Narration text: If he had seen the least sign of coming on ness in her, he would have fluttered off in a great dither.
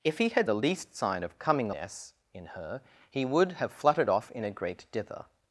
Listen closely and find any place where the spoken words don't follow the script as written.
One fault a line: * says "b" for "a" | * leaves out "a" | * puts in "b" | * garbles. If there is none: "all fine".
* leaves out "seen"
* leaves out "on"